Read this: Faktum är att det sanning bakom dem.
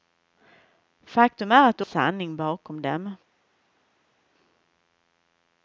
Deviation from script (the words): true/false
false